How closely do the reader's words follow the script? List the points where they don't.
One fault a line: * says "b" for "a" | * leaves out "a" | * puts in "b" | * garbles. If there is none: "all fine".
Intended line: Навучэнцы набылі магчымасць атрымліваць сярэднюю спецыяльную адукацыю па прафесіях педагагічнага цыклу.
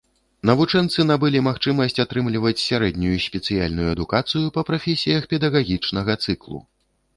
all fine